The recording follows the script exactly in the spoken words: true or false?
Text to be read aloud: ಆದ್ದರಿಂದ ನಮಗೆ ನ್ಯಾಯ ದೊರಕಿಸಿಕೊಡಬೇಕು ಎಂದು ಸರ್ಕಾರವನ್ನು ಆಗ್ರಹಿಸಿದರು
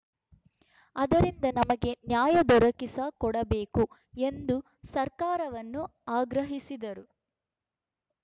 true